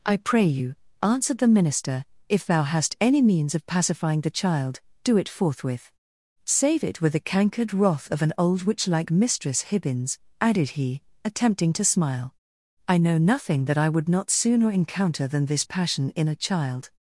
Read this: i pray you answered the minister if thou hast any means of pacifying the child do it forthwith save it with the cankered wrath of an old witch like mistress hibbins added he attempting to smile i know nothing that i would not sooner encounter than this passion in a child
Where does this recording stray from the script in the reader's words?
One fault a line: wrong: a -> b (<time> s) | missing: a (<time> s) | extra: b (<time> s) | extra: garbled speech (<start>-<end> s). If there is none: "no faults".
no faults